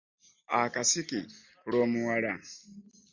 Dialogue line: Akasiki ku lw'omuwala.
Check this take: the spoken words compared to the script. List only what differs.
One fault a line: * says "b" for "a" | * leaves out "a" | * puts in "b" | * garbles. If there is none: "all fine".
all fine